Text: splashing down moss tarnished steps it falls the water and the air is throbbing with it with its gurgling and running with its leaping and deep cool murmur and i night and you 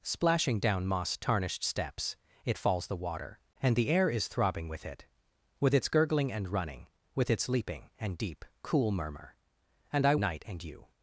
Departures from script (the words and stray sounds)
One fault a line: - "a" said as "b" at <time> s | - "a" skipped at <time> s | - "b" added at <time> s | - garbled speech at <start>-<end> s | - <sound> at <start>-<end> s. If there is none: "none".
none